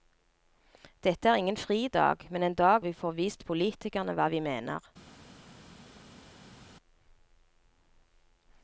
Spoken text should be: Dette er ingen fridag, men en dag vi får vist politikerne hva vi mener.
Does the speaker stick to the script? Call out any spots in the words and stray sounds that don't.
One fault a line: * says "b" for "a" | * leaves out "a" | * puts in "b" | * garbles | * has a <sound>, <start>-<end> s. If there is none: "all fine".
all fine